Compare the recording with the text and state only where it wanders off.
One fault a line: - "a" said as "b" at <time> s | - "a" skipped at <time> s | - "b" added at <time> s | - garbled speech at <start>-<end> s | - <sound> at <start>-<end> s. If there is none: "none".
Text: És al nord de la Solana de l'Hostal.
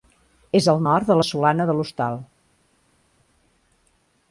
none